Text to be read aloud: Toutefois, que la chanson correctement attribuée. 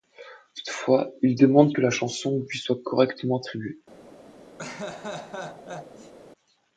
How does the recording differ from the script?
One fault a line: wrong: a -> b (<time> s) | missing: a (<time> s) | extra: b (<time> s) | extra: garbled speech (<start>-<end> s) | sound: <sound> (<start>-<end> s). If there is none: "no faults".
extra: il demande (1.2 s)
extra: lui soit (2.5 s)
sound: laugh (4.6-6.1 s)